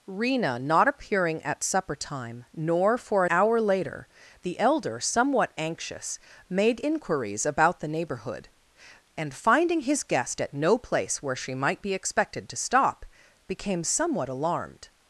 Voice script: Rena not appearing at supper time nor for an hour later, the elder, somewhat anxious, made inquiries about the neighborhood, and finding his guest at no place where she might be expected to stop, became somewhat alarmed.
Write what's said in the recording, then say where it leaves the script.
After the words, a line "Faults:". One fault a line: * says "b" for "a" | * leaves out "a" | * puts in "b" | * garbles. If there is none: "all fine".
Rena not appearing at supper time nor for hour later, the elder, somewhat anxious, made inquiries about the neighborhood, and finding his guest at no place where she might be expected to stop, became somewhat alarmed.
Faults:
* leaves out "an"